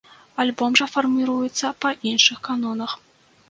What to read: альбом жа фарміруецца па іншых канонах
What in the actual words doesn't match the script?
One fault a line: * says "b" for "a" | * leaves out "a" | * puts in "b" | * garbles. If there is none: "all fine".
all fine